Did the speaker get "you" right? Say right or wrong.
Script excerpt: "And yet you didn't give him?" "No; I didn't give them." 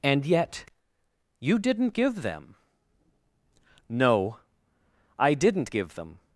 right